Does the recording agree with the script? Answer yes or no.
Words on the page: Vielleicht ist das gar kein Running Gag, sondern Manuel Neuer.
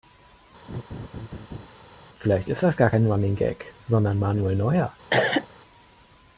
yes